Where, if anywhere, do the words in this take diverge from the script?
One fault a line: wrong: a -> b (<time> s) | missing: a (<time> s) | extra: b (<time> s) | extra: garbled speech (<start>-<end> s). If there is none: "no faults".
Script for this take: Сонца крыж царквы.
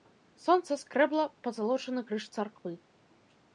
extra: скрэбла пазалочаны (0.8 s)